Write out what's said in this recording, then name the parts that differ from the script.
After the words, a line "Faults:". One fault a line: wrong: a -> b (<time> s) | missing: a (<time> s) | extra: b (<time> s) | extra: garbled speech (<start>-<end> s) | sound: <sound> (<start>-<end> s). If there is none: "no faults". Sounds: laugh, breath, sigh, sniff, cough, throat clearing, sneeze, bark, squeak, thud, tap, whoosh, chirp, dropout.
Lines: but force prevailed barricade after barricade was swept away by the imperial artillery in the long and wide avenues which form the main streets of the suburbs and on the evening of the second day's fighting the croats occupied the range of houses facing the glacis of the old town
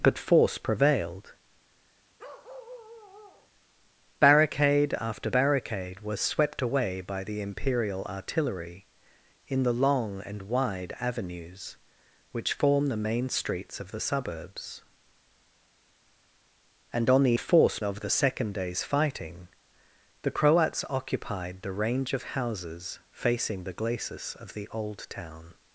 but force prevailed barricade after barricade was swept away by the imperial artillery in the long and wide avenues which form the main streets of the suburbs and on the force of the second day's fighting the croats occupied the range of houses facing the glacis of the old town
Faults:
sound: bark (2.2-3.5 s)
wrong: evening -> force (17.4 s)